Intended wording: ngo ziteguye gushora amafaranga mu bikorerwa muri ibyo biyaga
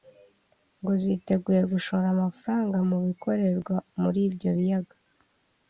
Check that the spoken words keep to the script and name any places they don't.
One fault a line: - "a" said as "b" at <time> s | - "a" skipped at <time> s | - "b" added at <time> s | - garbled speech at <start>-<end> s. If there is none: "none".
none